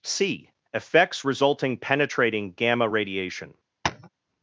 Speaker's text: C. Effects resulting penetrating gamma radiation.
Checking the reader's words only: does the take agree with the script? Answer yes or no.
yes